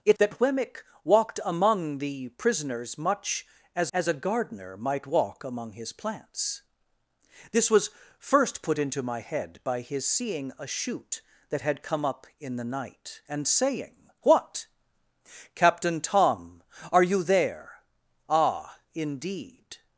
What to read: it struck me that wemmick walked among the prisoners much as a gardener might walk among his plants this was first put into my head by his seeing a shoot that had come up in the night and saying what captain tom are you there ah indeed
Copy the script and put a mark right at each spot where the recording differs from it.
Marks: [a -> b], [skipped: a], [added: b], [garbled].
it [skipped: struck me] that wemmick walked among the prisoners much as [added: as] a gardener might walk among his plants this was first put into my head by his seeing a shoot that had come up in the night and saying what captain tom are you there ah indeed